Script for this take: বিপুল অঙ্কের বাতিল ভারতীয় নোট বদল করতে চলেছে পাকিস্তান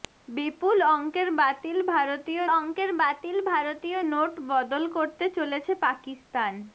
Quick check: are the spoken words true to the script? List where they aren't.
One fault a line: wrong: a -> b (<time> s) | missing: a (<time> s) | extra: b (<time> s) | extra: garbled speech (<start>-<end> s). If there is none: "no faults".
extra: অঙ্কের বাতিল ভারতীয় (2.5 s)